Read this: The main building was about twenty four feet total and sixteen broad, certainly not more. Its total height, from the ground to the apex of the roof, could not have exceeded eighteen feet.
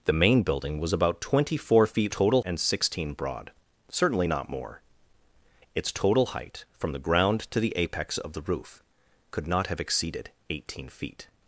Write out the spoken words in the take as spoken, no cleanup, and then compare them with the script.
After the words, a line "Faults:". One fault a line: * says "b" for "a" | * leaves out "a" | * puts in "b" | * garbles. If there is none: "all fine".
The main building was about twenty four feet total and sixteen broad, certainly not more. Its total height, from the ground to the apex of the roof, could not have exceeded eighteen feet.
Faults:
all fine